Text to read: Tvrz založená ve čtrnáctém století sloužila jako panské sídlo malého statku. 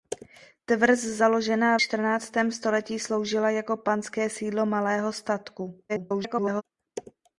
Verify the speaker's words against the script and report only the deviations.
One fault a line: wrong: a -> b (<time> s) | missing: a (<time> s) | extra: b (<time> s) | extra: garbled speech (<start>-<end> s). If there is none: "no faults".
missing: ve (1.8 s)
extra: garbled speech (5.9-6.6 s)